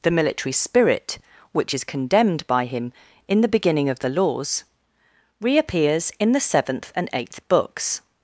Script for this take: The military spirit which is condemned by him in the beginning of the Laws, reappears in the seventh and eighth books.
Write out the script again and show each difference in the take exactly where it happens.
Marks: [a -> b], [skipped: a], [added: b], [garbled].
The military spirit which is condemned by him in the beginning of the Laws, reappears in the seventh and eighth books.